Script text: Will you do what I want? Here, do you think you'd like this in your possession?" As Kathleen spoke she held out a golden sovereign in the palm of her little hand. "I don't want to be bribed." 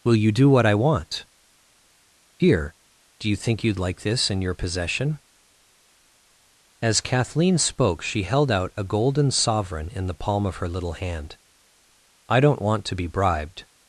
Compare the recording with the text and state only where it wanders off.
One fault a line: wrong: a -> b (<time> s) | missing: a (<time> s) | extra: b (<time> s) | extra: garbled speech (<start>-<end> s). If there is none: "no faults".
no faults